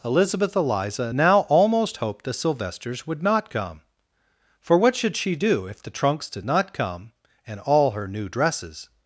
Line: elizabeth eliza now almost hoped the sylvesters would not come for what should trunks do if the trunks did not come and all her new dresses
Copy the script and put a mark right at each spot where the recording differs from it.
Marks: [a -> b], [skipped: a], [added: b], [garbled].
elizabeth eliza now almost hoped the sylvesters would not come for what should [trunks -> she] do if the trunks did not come and all her new dresses